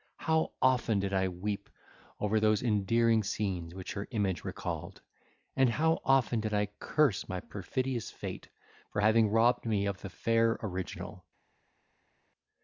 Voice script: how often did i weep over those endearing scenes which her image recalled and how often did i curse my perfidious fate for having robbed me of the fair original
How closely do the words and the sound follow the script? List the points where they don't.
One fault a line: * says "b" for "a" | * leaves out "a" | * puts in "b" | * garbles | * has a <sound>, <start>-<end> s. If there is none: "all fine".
all fine